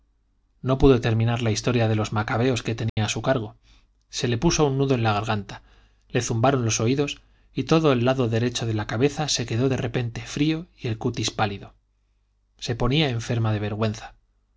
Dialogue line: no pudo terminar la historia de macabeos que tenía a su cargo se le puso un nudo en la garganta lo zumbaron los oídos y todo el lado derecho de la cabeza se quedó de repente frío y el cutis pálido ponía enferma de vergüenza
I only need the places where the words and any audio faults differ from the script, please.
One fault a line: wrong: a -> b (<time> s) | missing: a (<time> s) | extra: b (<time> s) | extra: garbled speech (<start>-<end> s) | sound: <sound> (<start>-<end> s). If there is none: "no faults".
extra: los (1.9 s)
sound: dropout (2.9-3.0 s)
wrong: lo -> le (6.1 s)
extra: se (12.6 s)